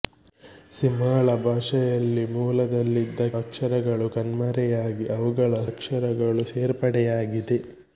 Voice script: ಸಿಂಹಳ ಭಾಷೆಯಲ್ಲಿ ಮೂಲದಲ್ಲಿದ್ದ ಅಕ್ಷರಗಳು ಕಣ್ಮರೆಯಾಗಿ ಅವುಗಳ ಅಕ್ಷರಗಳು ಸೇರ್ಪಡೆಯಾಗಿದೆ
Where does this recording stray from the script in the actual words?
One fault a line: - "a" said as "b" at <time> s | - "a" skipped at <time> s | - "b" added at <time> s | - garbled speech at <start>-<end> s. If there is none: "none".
none